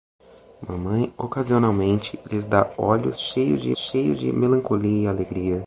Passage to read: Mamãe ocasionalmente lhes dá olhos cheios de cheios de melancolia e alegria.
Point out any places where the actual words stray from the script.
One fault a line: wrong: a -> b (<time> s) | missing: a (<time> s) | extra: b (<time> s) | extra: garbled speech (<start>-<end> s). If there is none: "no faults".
no faults